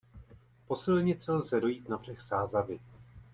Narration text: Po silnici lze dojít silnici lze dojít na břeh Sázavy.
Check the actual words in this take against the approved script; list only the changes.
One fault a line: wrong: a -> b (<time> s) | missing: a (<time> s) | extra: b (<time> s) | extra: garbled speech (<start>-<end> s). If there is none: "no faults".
missing: silnici lze dojít (1.9 s)